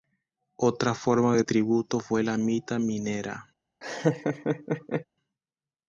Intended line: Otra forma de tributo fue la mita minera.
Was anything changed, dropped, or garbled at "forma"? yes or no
no